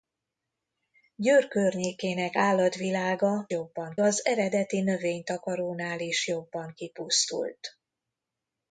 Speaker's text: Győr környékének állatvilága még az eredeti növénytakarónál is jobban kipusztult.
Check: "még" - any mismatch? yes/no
yes